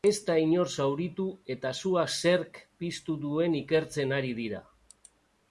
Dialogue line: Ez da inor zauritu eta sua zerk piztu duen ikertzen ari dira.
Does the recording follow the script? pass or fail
pass